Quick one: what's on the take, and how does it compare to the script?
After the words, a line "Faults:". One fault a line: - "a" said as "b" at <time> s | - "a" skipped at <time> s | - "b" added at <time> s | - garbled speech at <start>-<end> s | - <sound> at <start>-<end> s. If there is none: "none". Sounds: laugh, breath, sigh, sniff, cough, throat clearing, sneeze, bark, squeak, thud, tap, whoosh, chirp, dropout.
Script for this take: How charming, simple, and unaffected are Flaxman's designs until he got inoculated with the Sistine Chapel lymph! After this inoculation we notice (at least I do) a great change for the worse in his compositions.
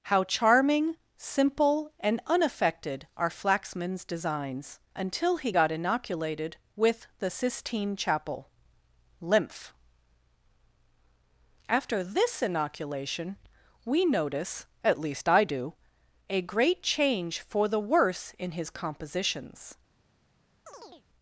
How charming, simple, and unaffected are Flaxman's designs until he got inoculated with the Sistine Chapel lymph! After this inoculation we notice (at least I do) a great change for the worse in his compositions.
Faults:
- chirp at 20.7-21.1 s